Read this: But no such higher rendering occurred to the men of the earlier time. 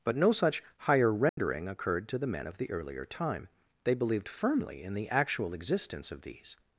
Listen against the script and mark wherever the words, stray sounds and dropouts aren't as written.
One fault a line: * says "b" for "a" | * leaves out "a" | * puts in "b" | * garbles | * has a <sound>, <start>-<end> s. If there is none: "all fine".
* has a dropout, 1.3-1.4 s
* puts in "They believed firmly in the actual existence of these"